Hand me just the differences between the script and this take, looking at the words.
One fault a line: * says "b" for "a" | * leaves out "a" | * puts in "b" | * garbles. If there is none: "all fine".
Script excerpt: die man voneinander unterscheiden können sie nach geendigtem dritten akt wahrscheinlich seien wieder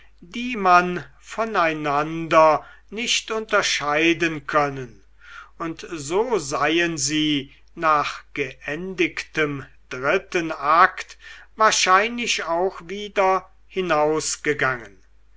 * puts in "nicht"
* puts in "und so seien"
* says "auch" for "seien"